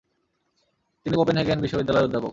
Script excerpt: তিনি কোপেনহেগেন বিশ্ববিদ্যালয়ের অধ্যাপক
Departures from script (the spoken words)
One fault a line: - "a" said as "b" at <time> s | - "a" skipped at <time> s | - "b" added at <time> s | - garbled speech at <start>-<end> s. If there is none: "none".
none